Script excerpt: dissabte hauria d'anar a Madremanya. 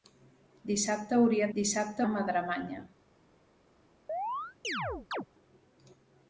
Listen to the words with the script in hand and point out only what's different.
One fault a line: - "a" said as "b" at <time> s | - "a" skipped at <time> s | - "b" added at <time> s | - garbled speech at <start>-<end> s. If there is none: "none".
- "d'anar" said as "dissabte" at 1.6 s